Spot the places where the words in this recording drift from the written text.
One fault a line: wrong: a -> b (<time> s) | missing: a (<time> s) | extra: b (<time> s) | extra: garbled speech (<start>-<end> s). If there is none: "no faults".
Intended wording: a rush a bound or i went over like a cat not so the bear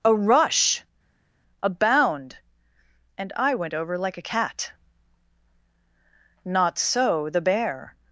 wrong: or -> and (3.2 s)